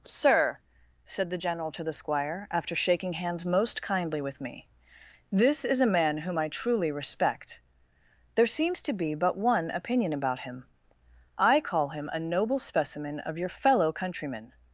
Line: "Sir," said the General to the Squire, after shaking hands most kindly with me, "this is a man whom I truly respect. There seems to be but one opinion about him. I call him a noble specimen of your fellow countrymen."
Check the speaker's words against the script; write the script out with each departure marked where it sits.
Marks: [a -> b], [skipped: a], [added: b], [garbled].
"Sir," said the General to the Squire, after shaking hands most kindly with me, "this is a man whom I truly respect. There seems to be but one opinion about him. I call him a noble specimen of your fellow countrymen."